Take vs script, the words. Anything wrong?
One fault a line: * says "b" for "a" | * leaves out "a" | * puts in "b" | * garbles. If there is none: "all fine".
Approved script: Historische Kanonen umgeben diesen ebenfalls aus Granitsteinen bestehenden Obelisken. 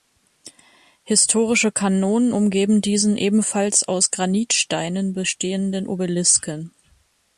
all fine